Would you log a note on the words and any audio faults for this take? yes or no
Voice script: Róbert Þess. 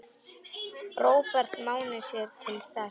yes